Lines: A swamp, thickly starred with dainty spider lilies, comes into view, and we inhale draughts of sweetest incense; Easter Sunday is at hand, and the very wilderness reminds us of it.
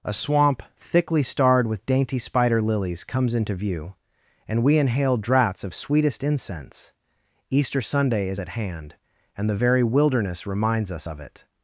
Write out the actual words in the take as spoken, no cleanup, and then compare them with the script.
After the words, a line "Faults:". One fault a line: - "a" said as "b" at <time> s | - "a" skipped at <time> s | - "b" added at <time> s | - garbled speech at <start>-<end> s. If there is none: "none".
A swamp, thickly starred with dainty spider lilies, comes into view, and we inhale draughts of sweetest incense; Easter Sunday is at hand, and the very wilderness reminds us of it.
Faults:
none